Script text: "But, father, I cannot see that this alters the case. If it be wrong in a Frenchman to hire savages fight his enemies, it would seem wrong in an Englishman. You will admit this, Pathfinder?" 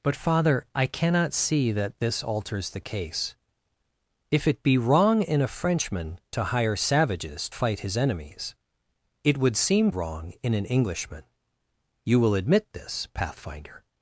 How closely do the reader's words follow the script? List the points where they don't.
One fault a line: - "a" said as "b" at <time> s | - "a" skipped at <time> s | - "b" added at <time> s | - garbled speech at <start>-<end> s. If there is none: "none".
none